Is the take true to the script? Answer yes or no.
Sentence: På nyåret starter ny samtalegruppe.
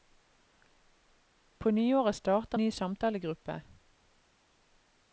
yes